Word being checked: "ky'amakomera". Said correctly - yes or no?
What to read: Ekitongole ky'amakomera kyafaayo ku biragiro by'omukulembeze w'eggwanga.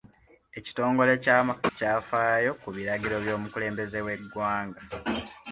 no